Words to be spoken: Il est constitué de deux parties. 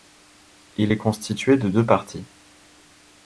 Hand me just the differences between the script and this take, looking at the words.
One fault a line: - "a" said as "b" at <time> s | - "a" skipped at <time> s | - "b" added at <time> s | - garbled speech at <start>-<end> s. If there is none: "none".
none